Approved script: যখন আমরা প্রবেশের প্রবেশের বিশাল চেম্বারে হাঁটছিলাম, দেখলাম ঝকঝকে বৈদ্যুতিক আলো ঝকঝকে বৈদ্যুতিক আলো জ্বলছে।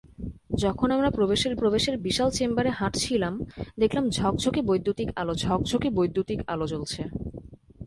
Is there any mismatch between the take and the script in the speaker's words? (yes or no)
no